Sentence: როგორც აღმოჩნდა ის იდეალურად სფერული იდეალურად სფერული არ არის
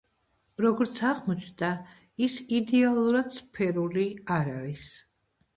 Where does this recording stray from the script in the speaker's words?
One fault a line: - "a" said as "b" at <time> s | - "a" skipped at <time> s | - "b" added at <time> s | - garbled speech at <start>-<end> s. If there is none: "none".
- "იდეალურად სფერული" skipped at 4.1 s